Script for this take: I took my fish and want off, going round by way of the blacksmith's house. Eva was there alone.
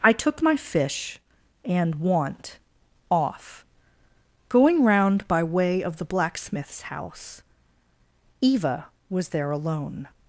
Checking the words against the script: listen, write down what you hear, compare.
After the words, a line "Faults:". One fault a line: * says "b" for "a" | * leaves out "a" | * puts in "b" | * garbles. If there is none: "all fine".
I took my fish and want off, going round by way of the blacksmith's house. Eva was there alone.
Faults:
all fine